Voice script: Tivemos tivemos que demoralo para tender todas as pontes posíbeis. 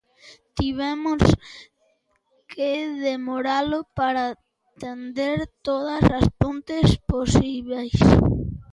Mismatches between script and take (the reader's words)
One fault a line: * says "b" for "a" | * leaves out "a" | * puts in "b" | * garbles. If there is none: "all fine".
* leaves out "tivemos"